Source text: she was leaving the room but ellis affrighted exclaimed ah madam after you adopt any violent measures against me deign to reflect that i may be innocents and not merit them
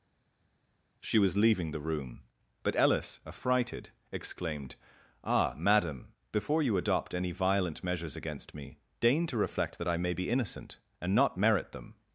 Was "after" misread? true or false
true